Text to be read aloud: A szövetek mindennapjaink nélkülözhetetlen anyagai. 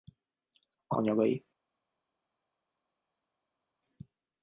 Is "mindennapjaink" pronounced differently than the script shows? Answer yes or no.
yes